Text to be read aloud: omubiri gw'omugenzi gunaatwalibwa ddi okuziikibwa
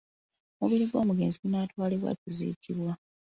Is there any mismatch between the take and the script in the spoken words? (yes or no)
yes